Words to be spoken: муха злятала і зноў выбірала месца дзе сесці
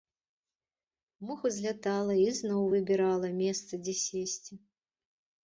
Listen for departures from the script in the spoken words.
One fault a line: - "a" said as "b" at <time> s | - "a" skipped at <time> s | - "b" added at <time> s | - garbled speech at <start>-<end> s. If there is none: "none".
none